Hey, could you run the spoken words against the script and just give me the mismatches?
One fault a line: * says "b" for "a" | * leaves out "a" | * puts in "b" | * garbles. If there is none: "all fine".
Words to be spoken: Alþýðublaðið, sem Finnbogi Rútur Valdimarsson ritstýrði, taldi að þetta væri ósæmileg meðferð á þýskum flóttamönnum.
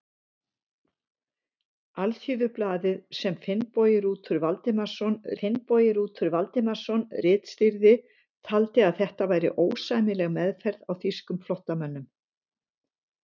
* puts in "Finnbogi Rútur Valdimarsson"